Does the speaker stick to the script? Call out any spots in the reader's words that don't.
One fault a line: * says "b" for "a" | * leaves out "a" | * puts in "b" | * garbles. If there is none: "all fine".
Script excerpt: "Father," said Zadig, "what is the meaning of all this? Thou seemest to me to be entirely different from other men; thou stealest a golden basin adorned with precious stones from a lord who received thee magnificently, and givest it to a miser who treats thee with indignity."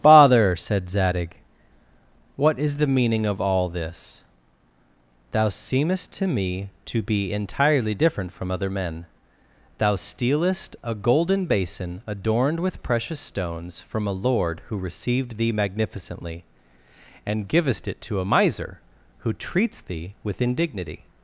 all fine